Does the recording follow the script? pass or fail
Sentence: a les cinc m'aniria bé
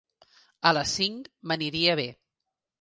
pass